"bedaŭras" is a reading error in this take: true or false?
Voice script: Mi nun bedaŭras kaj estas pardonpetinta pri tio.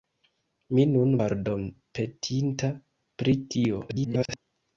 true